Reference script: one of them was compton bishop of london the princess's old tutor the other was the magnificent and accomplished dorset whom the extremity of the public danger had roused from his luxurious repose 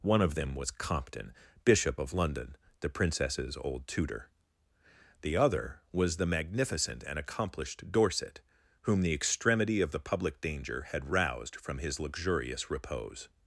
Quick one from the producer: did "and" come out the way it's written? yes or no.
yes